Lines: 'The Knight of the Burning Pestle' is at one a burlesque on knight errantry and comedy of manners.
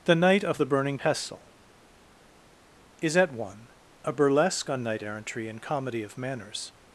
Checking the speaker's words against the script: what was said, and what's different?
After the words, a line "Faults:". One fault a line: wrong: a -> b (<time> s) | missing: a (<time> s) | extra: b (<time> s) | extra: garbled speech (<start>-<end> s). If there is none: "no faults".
'The Knight of the Burning Pestle' is at one a burlesque on knight errantry and comedy of manners.
Faults:
no faults